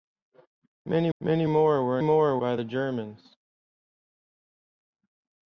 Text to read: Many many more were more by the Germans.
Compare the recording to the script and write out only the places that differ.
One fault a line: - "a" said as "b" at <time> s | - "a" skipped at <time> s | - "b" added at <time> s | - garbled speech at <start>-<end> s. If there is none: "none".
none